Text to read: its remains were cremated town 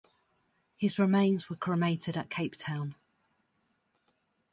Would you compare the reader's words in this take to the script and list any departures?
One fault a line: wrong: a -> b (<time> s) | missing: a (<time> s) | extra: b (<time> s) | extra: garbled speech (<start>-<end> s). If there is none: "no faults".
wrong: its -> his (0.8 s)
extra: at cape (2.2 s)